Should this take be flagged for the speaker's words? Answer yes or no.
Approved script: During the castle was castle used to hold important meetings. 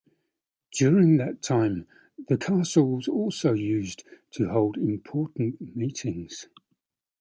yes